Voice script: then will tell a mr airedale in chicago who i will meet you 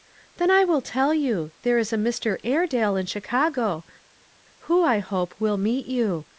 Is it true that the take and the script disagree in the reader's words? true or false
true